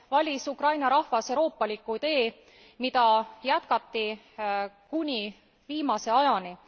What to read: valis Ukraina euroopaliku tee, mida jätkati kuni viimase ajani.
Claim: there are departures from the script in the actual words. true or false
true